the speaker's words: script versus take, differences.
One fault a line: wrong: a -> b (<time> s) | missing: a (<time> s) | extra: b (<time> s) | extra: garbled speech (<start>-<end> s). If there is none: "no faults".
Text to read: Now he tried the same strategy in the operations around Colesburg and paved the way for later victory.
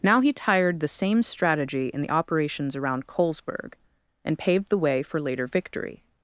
wrong: tried -> tired (0.3 s)